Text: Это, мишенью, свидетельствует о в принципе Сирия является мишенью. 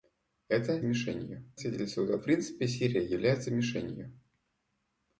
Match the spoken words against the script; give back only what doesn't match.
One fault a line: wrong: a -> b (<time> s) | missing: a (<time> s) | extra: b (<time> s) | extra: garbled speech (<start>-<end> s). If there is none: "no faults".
no faults